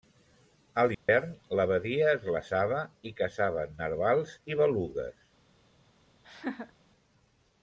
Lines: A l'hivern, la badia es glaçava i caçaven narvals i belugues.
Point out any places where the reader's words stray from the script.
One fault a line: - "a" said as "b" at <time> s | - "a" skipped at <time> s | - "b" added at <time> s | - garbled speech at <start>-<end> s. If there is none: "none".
none